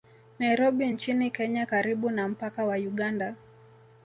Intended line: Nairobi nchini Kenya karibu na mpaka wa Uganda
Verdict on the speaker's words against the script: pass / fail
pass